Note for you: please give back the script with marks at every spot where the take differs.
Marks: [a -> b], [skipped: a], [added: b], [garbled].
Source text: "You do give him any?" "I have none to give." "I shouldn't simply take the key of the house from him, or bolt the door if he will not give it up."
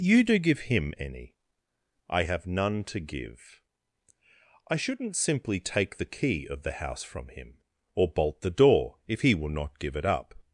"You do give him any?" "I have none to give." "I shouldn't simply take the key of the house from him, or bolt the door if he will not give it up."